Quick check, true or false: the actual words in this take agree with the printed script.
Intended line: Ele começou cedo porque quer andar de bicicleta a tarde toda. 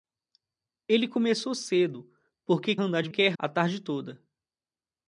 false